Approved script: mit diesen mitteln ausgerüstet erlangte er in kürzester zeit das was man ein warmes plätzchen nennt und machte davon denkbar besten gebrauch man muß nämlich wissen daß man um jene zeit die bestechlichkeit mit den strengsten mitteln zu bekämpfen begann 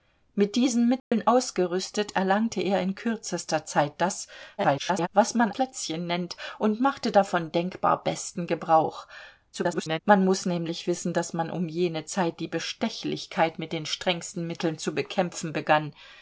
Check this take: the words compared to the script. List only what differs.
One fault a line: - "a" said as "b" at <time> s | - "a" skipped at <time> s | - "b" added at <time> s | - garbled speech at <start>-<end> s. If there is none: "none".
- garbled speech at 4.6-5.1 s
- "ein warmes" skipped at 5.5 s
- garbled speech at 9.5-10.0 s